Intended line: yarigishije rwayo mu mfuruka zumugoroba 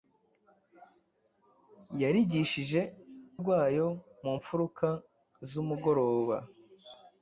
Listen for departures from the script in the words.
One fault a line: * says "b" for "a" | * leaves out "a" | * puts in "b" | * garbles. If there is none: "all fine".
all fine